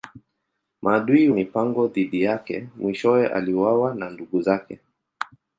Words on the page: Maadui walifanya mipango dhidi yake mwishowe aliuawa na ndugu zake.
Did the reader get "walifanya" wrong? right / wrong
wrong